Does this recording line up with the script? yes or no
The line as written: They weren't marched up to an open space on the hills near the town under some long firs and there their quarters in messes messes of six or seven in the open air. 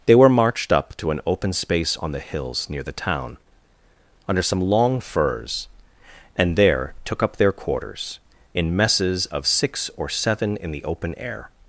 no